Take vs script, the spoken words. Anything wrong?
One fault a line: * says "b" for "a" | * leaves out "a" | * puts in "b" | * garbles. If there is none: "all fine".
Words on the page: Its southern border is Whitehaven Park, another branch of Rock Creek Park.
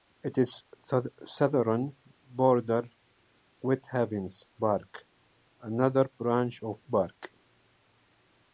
* leaves out "is"
* leaves out "Rock Creek"